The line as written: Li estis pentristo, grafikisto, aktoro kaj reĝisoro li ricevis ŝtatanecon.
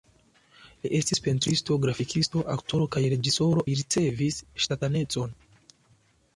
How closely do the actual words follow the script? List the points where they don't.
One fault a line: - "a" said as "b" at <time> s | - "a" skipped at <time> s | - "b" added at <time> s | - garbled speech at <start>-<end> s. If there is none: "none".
none